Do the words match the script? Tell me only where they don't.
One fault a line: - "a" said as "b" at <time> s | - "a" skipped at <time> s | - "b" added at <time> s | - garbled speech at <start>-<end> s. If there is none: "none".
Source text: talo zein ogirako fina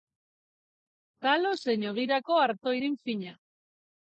- "arto irin" added at 2.5 s